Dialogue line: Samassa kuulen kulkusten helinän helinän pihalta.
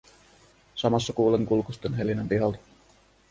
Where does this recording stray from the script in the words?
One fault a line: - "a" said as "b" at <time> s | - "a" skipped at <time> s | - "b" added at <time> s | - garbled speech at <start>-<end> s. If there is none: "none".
- "helinän" skipped at 2.3 s